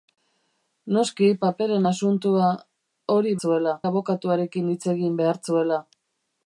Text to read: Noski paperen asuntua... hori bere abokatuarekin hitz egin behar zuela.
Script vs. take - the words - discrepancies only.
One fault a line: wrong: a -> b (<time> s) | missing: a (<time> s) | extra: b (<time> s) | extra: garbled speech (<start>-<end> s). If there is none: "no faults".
wrong: bere -> zuela (3.4 s)